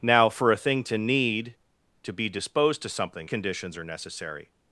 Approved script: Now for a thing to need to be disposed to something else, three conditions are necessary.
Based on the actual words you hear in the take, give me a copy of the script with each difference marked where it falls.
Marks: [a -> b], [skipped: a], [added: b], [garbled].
Now for a thing to need to be disposed to something [skipped: else, three] conditions are necessary.